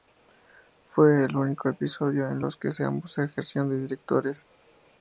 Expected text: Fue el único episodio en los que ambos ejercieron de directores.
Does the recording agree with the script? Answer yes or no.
yes